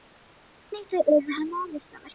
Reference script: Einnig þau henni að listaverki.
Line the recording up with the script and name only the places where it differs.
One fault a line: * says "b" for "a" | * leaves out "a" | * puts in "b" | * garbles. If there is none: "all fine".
* puts in "urðu"